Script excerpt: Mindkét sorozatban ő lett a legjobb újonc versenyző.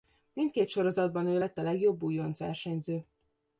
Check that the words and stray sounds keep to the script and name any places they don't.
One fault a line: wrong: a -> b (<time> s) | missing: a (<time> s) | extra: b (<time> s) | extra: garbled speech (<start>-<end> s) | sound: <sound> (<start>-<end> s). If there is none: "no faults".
no faults